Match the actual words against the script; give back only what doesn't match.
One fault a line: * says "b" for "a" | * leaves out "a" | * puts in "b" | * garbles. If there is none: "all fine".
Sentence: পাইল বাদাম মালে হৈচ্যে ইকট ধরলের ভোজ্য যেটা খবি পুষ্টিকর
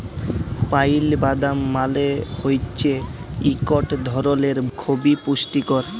* leaves out "ভোজ্য যেটা"